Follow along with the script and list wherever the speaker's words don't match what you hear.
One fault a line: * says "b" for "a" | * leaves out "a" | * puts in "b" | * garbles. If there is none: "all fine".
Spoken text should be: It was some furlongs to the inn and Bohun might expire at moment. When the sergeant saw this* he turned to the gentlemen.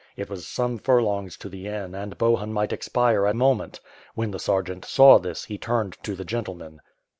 all fine